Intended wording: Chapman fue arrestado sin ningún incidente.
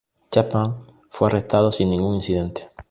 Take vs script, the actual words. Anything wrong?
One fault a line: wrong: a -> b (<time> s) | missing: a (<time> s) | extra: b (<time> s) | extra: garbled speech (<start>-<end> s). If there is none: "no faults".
no faults